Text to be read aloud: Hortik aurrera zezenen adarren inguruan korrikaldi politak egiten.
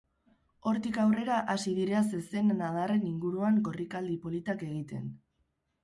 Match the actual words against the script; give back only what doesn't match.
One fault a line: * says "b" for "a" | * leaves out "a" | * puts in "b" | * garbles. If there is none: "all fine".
* puts in "hasi dira"